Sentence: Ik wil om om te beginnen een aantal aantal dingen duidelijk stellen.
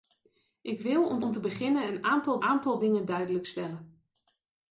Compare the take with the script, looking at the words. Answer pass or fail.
pass